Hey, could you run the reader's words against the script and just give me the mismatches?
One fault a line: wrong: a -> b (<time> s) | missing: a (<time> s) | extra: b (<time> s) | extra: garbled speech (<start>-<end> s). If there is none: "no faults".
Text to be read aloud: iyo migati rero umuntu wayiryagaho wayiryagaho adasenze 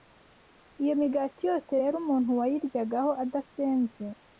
extra: yose (1.5 s)
missing: wayiryagaho (3.1 s)